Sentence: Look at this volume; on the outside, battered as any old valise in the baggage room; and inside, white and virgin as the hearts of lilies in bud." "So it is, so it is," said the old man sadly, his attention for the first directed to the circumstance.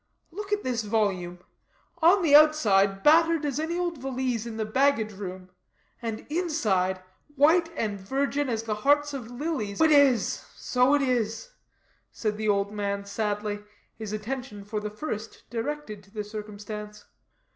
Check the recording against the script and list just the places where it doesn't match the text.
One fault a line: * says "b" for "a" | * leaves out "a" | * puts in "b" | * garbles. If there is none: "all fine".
* leaves out "in bud So"